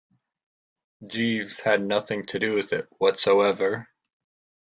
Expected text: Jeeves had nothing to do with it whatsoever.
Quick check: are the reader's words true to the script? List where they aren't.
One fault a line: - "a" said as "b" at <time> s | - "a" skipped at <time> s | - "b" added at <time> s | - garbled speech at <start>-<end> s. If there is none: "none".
none